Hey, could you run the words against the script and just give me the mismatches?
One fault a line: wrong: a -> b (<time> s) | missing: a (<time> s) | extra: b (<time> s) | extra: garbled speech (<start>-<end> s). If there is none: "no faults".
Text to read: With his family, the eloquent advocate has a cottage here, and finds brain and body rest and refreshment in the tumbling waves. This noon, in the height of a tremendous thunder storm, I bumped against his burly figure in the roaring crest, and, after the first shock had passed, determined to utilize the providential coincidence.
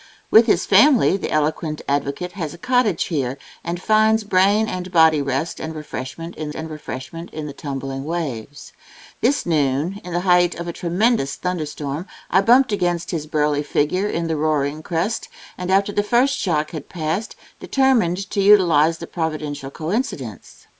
extra: and refreshment in (6.5 s)